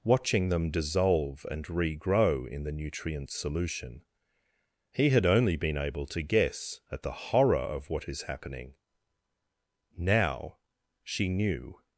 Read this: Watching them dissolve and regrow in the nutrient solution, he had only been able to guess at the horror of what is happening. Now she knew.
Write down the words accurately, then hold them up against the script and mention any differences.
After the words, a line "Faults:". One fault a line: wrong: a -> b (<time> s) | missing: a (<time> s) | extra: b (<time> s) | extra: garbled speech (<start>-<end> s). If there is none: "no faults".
Watching them dissolve and regrow in the nutrient solution, he had only been able to guess at the horror of what is happening. Now she knew.
Faults:
no faults